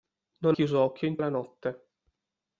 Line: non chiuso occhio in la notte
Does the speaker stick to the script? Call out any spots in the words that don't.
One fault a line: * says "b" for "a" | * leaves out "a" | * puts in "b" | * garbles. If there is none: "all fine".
all fine